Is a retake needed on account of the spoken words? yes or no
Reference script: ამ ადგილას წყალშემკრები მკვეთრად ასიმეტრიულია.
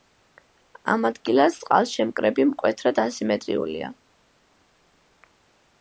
no